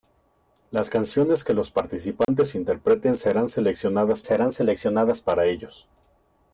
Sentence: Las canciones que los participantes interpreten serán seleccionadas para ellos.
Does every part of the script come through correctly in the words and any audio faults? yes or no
no